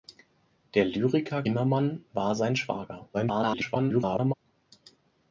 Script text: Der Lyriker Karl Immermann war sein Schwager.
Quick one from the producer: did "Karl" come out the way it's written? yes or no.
no